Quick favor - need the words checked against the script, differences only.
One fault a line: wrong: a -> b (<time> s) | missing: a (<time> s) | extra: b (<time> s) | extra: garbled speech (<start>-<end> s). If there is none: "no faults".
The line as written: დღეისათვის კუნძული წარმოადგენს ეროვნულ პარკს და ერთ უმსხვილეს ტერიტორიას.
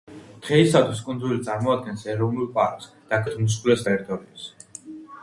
no faults